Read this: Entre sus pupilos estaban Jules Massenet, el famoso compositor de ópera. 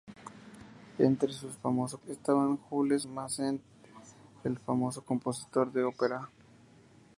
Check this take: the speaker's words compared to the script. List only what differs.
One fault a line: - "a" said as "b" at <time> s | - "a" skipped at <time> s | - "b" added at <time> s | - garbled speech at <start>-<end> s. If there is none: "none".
- "pupilos" said as "famoso" at 1.5 s